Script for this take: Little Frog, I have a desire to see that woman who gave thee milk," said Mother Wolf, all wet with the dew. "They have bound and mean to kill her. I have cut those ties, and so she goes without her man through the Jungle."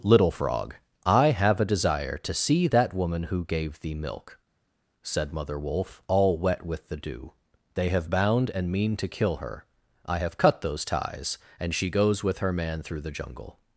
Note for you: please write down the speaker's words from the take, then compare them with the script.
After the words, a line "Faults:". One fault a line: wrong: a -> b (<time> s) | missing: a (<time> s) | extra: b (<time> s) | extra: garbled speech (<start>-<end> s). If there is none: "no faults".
Little Frog, I have a desire to see that woman who gave thee milk," said Mother Wolf, all wet with the dew. "They have bound and mean to kill her. I have cut those ties, and she goes with her man through the Jungle."
Faults:
missing: so (11.8 s)
wrong: without -> with (12.2 s)